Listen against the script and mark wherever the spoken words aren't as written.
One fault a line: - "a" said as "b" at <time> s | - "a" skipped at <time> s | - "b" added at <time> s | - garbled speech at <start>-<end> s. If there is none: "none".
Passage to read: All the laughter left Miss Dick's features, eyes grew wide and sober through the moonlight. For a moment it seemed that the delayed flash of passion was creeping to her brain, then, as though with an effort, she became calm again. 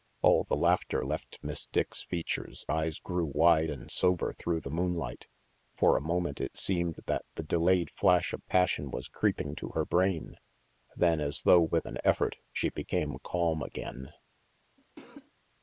none